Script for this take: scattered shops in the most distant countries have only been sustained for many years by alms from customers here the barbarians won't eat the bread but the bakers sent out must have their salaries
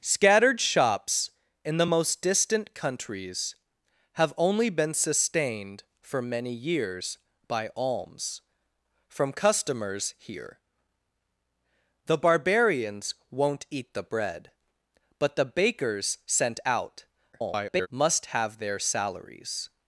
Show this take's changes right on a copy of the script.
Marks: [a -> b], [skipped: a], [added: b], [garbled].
scattered shops in the most distant countries have only been sustained for many years by alms from customers here the barbarians won't eat the bread but the bakers sent out [garbled] must have their salaries